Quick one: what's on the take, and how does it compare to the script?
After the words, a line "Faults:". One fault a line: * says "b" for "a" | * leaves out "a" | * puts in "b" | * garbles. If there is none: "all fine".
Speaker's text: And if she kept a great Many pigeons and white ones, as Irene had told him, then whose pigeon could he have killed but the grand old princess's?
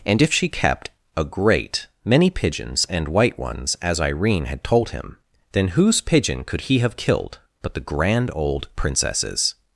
And if she kept a great Many pigeons and white ones, as Irene had told him, then whose pigeon could he have killed but the grand old princess's?
Faults:
all fine